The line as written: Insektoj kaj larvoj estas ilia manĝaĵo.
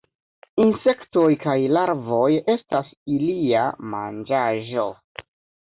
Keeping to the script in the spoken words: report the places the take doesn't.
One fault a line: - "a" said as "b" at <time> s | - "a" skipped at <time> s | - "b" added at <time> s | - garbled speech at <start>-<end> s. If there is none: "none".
none